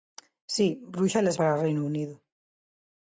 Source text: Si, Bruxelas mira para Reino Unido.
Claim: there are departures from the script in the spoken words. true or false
true